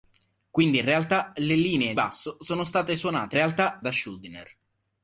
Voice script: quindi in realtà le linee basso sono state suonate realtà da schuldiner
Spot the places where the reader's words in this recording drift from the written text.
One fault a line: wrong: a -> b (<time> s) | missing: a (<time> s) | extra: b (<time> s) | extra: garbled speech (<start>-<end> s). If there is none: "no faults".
no faults